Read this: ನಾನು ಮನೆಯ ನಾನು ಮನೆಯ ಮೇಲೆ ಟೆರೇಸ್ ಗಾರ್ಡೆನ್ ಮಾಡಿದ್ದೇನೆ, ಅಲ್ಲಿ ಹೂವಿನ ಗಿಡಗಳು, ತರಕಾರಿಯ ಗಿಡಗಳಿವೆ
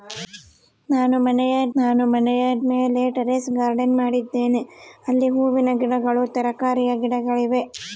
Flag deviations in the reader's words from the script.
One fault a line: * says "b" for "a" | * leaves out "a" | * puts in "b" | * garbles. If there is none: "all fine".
all fine